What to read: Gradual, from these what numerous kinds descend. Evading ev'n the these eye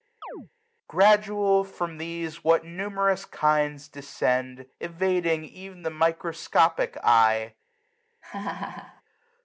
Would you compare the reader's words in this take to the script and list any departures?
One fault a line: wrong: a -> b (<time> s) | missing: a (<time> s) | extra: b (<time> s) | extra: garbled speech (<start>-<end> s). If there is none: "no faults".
wrong: these -> microscopic (5.9 s)